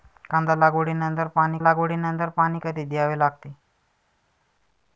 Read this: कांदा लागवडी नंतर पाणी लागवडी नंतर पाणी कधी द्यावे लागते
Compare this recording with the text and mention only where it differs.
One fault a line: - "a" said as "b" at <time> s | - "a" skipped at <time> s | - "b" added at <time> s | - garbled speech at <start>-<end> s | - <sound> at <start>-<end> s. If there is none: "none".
none